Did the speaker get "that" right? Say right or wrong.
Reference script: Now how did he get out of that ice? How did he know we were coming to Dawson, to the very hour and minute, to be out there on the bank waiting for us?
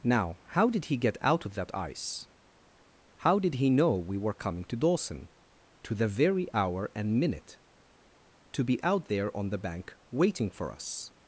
right